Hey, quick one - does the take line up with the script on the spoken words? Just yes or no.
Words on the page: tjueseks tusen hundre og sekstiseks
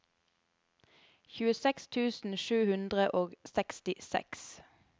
no